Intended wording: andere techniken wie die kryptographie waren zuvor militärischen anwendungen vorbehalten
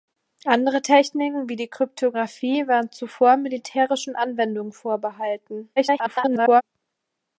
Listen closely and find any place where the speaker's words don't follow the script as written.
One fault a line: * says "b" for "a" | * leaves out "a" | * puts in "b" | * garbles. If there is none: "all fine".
* garbles